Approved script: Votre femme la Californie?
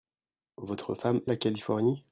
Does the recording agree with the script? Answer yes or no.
yes